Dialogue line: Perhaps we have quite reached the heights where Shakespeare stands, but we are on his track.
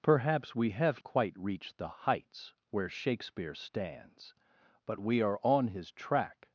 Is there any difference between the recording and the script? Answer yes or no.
no